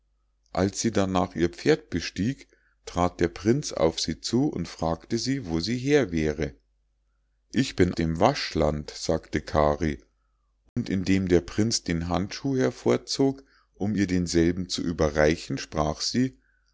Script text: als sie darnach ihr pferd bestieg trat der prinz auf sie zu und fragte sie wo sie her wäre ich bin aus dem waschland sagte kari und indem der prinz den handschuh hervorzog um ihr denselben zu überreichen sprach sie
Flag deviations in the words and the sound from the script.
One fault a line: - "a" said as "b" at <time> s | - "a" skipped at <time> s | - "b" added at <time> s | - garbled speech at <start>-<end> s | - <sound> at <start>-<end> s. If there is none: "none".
- "aus" skipped at 7.9 s
- dropout at 10.7-10.8 s